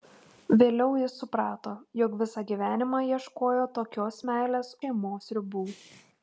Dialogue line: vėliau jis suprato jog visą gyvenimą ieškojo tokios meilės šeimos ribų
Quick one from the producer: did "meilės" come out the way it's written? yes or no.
yes